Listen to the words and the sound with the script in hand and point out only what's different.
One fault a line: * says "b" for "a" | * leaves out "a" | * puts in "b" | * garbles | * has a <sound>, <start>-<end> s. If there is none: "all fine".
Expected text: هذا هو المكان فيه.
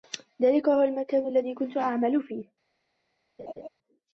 * says "ذلك" for "هذا"
* puts in "الذي كنت أعمل"
* has a laugh, 3.4-3.7 s